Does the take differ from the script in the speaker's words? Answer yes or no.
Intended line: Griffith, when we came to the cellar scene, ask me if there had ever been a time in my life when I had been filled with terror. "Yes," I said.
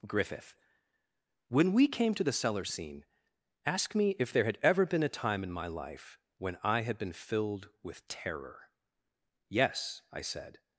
no